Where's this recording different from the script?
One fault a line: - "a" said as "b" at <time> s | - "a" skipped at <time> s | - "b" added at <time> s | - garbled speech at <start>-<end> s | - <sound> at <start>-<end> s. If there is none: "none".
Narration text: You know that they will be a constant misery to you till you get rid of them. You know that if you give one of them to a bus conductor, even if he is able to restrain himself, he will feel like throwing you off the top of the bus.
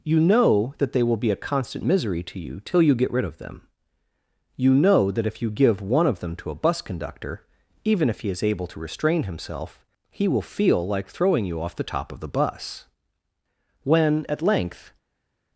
- "When at length" added at 13.8 s